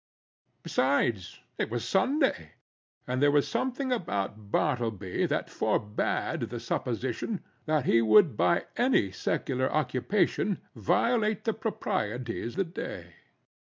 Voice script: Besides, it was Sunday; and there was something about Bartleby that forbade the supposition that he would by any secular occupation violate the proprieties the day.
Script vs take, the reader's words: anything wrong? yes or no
no